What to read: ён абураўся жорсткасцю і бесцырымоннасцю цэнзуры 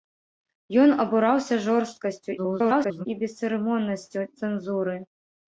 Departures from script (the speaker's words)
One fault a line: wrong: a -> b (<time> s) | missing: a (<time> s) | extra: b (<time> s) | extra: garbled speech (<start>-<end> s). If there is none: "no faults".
extra: garbled speech (2.4-3.1 s)